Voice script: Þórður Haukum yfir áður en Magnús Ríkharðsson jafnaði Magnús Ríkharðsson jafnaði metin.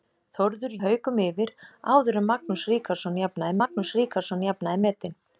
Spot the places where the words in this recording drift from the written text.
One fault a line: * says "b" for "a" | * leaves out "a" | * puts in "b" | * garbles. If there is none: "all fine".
all fine